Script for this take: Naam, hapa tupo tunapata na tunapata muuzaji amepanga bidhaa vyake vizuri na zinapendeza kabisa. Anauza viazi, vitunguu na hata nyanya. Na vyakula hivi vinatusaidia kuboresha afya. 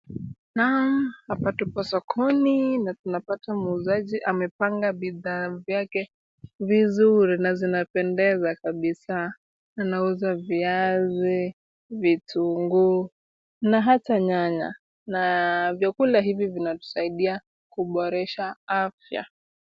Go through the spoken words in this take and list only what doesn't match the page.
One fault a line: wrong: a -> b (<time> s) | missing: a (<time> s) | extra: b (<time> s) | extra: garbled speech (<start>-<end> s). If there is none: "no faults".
wrong: tunapata -> sokoni (1.8 s)